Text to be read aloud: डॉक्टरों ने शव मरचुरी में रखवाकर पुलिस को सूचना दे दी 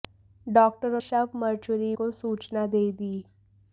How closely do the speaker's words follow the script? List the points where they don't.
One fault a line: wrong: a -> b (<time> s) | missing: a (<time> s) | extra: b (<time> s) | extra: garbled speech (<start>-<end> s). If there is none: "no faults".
missing: ने (1.0 s)
missing: में रखवाकर पुलिस (1.9 s)